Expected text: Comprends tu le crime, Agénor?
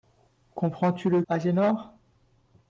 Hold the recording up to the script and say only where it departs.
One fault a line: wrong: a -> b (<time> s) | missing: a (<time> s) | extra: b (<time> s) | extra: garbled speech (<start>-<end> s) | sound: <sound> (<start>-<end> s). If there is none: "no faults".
missing: crime (1.2 s)